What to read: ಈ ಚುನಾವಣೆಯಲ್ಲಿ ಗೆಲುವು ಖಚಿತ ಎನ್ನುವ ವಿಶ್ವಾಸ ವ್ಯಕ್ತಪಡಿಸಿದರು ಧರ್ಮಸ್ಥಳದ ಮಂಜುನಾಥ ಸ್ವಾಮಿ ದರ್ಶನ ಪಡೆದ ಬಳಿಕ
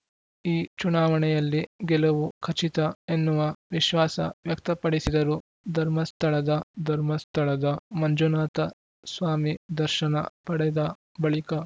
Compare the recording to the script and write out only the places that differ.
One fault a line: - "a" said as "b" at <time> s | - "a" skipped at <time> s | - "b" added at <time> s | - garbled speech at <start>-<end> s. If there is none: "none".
- "ಧರ್ಮಸ್ಥಳದ" added at 6.8 s